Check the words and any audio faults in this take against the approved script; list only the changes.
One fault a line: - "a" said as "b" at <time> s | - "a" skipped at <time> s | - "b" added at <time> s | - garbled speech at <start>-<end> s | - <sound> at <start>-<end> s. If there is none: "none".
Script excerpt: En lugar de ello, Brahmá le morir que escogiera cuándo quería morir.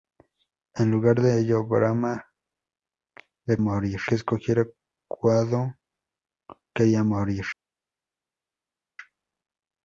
none